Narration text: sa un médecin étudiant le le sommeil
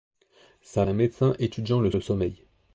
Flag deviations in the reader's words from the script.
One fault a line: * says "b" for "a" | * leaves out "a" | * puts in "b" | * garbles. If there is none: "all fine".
all fine